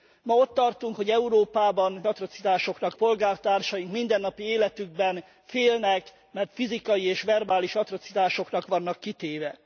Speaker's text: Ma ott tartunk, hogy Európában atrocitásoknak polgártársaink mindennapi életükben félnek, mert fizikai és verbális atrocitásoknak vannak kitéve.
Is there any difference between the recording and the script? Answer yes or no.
no